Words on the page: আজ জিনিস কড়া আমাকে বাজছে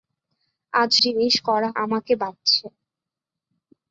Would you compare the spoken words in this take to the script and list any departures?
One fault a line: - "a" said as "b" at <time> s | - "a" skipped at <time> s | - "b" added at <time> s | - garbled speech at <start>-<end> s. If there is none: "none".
none